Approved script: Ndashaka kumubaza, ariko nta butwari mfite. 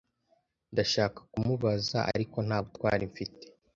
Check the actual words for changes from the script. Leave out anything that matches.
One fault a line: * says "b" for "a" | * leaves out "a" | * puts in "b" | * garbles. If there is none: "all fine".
all fine